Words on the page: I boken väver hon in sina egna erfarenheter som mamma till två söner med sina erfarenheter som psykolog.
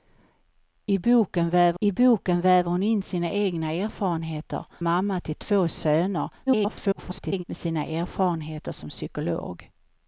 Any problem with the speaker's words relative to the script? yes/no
yes